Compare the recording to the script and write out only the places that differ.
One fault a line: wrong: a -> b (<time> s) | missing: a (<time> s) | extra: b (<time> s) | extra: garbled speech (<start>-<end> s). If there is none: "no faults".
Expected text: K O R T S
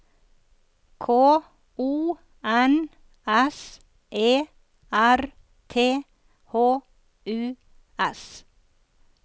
extra: N S E (2.4 s)
extra: H U (6.5 s)